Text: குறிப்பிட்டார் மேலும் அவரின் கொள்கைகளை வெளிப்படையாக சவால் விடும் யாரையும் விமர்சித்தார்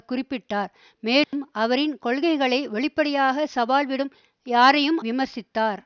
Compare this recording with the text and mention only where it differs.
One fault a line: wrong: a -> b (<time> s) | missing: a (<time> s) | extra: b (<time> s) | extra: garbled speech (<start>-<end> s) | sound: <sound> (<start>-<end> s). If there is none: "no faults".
sound: dropout (1.2-1.3 s)